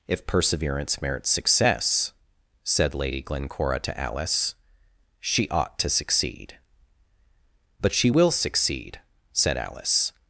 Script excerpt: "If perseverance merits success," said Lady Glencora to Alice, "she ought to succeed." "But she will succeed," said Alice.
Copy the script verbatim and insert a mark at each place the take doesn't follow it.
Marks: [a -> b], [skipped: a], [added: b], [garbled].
"If perseverance merits success," said Lady Glencora to Alice, "she ought to succeed." "But she will succeed," said Alice.